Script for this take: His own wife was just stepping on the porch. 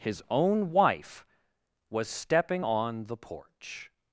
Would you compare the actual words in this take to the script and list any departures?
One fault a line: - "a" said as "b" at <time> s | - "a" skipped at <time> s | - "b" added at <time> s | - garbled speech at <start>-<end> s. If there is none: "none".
- "just" skipped at 2.1 s